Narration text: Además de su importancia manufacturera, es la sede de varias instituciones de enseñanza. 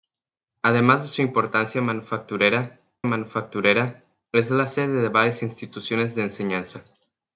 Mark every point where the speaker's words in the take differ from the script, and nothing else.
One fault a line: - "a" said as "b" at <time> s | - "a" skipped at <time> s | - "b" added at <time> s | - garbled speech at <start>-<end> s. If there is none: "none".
- "manufacturera" added at 3.0 s